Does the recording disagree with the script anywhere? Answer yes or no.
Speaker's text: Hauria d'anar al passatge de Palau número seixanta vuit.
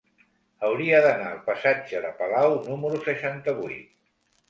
no